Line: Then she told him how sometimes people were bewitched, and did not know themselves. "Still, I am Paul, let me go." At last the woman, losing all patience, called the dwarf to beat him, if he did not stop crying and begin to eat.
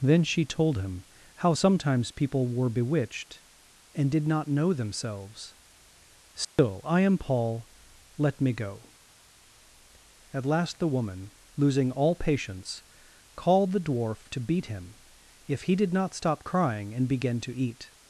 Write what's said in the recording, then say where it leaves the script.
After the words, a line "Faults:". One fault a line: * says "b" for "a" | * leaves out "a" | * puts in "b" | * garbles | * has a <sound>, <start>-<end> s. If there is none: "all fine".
Then she told him how sometimes people were bewitched, and did not know themselves. "Still, I am Paul, let me go." At last the woman, losing all patience, called the dwarf to beat him, if he did not stop crying and begin to eat.
Faults:
* has a dropout, 6.4-6.6 s